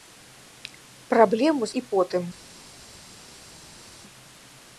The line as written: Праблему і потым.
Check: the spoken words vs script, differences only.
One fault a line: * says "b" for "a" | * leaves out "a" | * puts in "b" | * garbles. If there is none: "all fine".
all fine